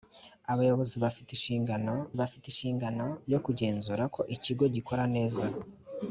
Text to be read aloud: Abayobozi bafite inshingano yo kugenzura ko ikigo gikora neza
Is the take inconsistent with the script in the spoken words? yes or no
yes